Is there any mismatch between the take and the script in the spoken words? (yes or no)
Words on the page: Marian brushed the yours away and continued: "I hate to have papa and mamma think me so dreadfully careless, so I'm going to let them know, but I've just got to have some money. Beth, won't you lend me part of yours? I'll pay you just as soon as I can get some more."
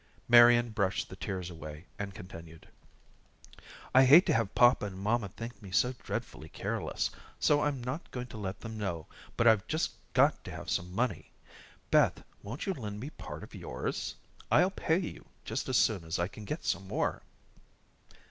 yes